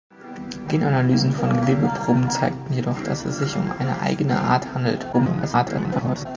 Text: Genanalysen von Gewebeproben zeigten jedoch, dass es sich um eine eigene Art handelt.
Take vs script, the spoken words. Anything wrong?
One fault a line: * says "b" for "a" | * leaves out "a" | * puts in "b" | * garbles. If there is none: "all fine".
* garbles